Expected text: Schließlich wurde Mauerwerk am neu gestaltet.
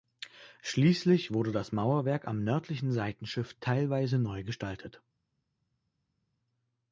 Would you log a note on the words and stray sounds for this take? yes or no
yes